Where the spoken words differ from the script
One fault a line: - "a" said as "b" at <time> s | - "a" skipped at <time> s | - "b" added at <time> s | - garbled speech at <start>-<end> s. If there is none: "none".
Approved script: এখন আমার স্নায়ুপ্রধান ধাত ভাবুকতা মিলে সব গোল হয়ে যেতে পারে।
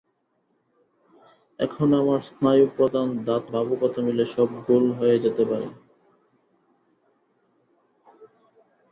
none